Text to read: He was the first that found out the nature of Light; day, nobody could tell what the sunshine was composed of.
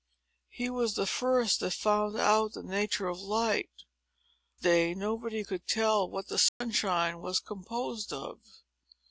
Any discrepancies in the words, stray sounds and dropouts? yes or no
yes